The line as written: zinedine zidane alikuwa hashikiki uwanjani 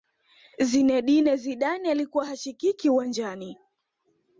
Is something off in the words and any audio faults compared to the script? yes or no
no